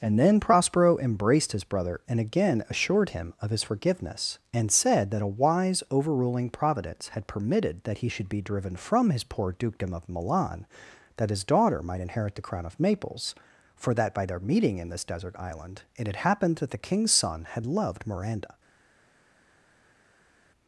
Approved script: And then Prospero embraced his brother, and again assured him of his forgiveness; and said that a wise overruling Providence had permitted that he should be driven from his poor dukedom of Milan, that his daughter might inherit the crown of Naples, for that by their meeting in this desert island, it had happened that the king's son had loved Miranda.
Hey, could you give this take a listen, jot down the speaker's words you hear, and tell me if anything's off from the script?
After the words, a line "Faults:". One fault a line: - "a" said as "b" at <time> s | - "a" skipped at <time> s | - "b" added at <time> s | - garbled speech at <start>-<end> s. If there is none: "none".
And then Prospero embraced his brother, and again assured him of his forgiveness; and said that a wise overruling Providence had permitted that he should be driven from his poor dukedom of Milan, that his daughter might inherit the crown of Naples, for that by their meeting in this desert island, it had happened that the king's son had loved Miranda.
Faults:
none